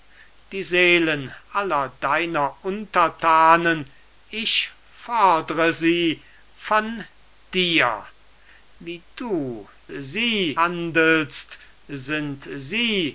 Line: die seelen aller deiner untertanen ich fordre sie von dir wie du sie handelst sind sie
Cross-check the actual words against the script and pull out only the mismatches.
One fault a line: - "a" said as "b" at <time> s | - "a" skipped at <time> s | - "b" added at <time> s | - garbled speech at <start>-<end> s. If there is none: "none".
none